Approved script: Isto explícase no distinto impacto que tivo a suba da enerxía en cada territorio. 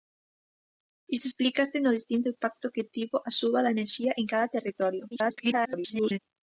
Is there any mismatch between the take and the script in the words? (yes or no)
yes